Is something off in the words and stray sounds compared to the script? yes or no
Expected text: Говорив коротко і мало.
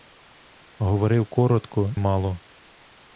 yes